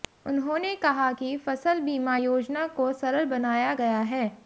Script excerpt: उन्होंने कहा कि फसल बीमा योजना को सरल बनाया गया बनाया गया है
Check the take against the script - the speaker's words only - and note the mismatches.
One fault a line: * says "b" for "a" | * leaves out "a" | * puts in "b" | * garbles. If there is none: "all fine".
* leaves out "बनाया गया"